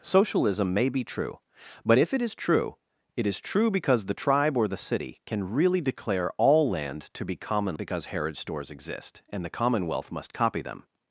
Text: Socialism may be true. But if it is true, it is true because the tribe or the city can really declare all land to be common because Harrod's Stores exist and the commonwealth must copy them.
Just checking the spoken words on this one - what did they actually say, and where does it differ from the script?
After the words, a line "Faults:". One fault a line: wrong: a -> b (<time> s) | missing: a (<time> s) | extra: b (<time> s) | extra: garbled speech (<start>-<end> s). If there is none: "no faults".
Socialism may be true. But if it is true, it is true because the tribe or the city can really declare all land to be common because Harrod's Stores exist and the commonwealth must copy them.
Faults:
no faults